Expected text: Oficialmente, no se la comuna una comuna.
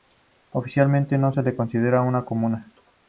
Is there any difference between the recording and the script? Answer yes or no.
yes